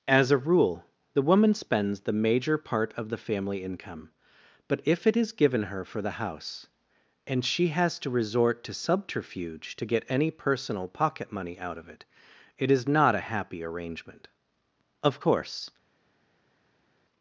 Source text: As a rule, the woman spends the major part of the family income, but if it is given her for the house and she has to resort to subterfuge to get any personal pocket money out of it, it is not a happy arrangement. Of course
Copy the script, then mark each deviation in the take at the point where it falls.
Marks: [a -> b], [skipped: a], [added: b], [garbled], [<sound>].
As a rule, the woman spends the major part of the family income, but if it is given her for the house and she has to resort to subterfuge to get any personal pocket money out of it, it is not a happy arrangement. Of course